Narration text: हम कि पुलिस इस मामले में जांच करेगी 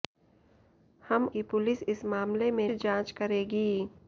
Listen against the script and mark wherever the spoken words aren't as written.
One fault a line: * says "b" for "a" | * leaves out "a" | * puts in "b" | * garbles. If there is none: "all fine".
all fine